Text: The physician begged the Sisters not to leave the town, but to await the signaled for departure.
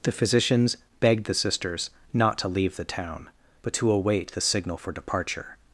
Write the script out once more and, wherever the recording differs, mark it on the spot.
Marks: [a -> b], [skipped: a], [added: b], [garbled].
The [physician -> physicians] begged the Sisters not to leave the town, but to await the [signaled -> signal] for departure.